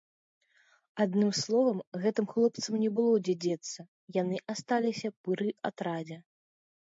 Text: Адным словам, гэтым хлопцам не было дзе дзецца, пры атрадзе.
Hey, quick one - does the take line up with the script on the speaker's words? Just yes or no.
no